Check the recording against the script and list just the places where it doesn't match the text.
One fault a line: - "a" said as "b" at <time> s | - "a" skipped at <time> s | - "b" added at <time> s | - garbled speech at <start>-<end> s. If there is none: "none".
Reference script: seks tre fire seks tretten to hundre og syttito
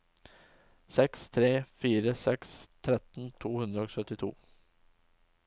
none